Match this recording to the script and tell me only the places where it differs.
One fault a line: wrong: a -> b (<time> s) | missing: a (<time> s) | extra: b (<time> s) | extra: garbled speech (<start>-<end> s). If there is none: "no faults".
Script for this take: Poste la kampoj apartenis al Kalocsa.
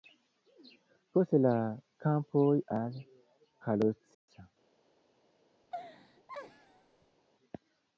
missing: apartenis (2.5 s)